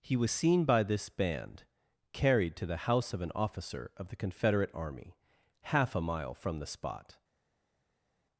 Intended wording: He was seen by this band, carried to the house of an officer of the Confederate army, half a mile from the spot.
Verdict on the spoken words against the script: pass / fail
pass